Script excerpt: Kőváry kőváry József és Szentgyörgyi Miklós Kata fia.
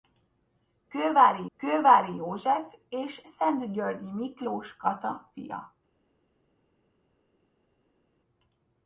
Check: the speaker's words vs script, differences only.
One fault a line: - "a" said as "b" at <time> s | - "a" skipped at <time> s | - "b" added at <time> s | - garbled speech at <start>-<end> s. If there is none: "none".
none